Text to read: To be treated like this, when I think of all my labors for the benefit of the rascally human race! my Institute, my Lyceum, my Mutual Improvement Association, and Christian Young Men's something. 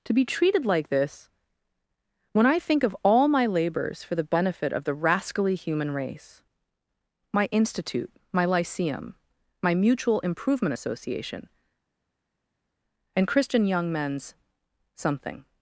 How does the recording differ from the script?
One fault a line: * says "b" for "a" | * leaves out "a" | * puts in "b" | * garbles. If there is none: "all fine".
all fine